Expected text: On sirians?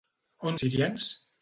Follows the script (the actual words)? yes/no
yes